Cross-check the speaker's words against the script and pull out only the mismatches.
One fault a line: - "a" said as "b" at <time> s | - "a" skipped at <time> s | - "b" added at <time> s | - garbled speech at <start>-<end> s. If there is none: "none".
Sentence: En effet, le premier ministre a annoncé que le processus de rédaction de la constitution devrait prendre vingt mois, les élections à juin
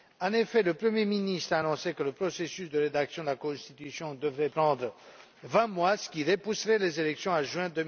- "ce qui repousserait" added at 6.0 s